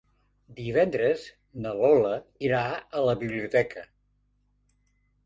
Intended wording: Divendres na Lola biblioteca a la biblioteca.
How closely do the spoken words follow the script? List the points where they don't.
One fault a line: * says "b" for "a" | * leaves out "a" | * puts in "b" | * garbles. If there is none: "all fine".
* says "irà" for "biblioteca"